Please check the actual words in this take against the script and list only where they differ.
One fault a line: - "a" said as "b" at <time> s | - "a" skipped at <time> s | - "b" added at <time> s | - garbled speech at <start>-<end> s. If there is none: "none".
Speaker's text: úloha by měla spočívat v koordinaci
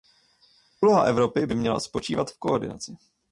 - "evropy" added at 1.0 s